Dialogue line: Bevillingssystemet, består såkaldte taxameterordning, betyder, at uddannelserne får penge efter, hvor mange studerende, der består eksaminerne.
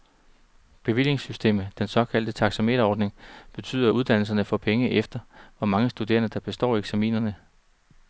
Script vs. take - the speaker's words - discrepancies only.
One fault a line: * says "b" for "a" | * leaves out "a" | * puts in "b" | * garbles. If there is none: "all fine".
* says "den" for "består"